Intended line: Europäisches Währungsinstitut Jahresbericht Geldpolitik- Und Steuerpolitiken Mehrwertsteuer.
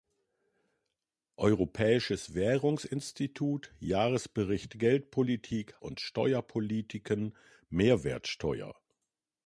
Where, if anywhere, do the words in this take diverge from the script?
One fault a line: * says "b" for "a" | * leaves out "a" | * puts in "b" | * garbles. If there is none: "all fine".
all fine